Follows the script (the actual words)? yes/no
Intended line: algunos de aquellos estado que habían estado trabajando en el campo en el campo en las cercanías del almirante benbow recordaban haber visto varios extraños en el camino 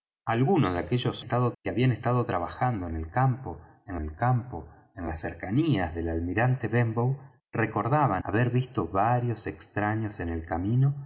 yes